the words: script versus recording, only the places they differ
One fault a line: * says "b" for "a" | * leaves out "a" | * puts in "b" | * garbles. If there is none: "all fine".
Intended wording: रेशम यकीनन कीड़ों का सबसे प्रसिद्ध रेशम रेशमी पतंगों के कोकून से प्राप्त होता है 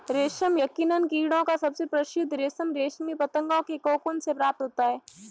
all fine